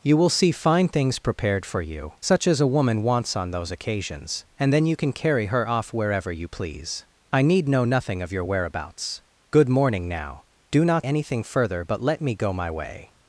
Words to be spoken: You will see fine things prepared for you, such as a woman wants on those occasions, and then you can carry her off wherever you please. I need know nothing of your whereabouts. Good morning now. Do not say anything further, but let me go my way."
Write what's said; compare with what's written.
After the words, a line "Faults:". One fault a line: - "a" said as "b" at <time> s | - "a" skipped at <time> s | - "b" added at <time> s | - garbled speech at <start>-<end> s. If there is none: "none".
You will see fine things prepared for you, such as a woman wants on those occasions, and then you can carry her off wherever you please. I need know nothing of your whereabouts. Good morning now. Do not anything further, but let me go my way."
Faults:
- "say" skipped at 11.1 s